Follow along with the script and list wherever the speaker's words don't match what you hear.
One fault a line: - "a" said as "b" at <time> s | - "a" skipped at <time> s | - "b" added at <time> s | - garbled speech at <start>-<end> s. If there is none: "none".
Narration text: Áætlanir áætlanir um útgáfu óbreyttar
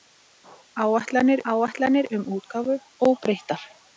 none